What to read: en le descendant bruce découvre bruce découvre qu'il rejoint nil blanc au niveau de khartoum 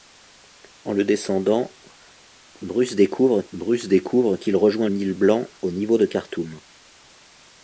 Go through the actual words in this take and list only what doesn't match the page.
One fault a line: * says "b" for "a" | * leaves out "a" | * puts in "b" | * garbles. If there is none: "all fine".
all fine